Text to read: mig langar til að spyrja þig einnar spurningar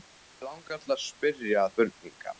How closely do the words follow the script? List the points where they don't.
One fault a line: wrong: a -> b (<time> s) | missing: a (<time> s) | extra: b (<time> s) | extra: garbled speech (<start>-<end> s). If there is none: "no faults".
missing: þig einnar (1.7 s)